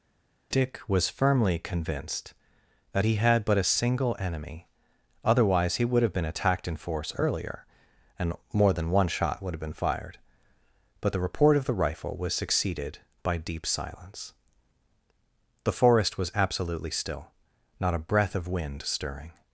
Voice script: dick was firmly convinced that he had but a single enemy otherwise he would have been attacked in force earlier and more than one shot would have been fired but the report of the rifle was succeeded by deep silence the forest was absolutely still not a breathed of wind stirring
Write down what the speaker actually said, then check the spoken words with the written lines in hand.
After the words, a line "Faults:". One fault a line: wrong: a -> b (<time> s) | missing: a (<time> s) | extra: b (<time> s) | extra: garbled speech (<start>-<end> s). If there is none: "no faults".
dick was firmly convinced that he had but a single enemy otherwise he would have been attacked in force earlier and more than one shot would have been fired but the report of the rifle was succeeded by deep silence the forest was absolutely still not a breath of wind stirring
Faults:
wrong: breathed -> breath (18.1 s)